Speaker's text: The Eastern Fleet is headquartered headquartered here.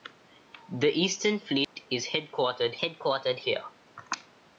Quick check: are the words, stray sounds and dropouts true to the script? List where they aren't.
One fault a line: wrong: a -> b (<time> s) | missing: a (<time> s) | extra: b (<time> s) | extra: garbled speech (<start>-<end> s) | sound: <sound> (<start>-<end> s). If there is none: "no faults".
sound: dropout (1.6-1.8 s)